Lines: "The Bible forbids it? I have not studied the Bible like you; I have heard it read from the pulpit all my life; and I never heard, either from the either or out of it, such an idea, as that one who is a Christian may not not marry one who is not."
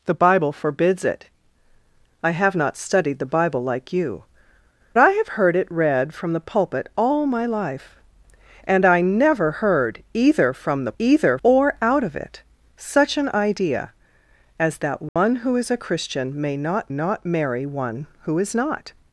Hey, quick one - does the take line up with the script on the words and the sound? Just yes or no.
no